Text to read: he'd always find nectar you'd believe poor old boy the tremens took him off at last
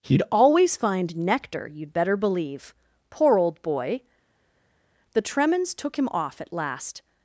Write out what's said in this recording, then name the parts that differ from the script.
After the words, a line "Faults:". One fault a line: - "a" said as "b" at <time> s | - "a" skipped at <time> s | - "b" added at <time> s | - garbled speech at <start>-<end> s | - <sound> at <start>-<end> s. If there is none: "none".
he'd always find nectar you'd better believe poor old boy the tremens took him off at last
Faults:
- "better" added at 1.9 s